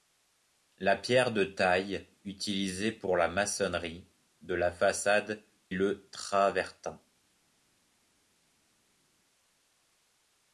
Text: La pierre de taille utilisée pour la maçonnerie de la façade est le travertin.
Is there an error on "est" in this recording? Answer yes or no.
yes